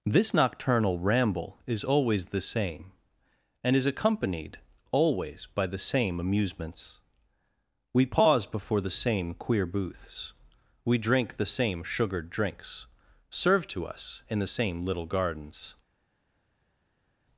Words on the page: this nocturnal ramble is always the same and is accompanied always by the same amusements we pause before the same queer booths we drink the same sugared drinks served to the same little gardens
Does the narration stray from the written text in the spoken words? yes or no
yes